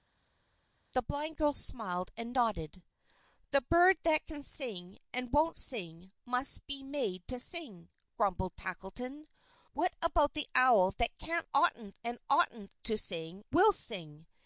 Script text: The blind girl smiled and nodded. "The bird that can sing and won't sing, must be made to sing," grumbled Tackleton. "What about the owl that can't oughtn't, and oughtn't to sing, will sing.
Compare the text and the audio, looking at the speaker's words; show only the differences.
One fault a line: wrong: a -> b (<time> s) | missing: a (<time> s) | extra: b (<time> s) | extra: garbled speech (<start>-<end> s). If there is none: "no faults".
no faults